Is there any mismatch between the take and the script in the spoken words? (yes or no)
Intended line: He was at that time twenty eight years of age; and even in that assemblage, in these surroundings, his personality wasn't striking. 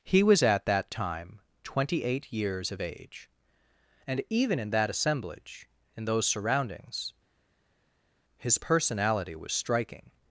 yes